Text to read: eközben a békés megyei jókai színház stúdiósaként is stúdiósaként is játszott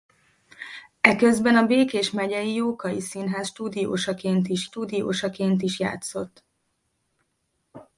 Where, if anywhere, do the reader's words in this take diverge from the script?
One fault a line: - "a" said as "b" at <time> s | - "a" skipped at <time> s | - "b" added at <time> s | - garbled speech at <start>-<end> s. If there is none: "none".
none